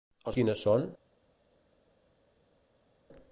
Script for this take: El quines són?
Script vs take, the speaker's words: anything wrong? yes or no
no